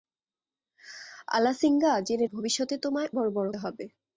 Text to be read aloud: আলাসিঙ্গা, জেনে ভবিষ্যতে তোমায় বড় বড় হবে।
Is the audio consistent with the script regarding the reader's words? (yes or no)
yes